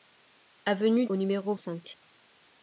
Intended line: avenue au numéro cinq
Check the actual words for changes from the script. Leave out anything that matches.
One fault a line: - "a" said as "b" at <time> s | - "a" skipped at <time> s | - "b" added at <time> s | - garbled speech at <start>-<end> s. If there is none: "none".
none